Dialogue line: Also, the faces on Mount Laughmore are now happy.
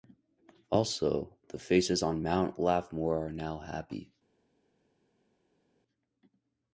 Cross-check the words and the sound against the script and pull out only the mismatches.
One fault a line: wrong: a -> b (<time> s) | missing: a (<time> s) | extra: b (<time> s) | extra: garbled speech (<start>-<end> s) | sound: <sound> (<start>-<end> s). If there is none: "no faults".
no faults